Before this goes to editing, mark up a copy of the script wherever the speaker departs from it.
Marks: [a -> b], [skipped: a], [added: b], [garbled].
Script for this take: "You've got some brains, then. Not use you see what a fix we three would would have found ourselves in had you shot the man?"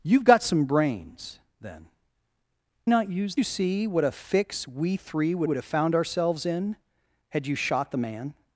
"You've got some brains, then. Not use you see what a fix we three would would have found ourselves in had you shot the man?"